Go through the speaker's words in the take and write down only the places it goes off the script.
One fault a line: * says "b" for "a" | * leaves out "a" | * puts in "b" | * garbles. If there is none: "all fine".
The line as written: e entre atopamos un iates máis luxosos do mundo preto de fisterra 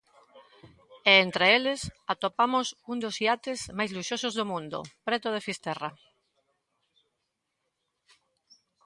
* puts in "eles"
* puts in "dos"